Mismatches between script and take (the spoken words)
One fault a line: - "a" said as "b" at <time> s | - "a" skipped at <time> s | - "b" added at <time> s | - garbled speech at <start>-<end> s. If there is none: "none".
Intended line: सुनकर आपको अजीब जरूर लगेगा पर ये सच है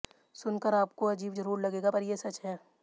none